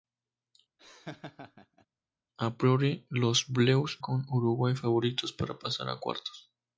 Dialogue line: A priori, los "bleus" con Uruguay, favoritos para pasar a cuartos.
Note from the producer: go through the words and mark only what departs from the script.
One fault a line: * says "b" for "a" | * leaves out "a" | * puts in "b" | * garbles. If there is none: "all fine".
all fine